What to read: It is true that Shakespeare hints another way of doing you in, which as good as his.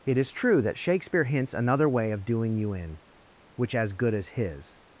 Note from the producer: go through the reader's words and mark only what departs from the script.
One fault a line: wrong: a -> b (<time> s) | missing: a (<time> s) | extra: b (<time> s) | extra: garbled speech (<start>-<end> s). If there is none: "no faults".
no faults